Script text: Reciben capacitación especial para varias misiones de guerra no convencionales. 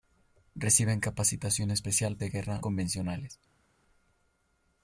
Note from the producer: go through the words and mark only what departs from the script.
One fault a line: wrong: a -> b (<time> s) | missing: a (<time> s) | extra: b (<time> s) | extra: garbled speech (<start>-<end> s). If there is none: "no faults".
missing: para varias misiones (2.2 s)
missing: no (2.6 s)